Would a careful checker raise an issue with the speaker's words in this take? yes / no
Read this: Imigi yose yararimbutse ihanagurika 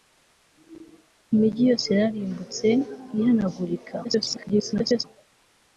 yes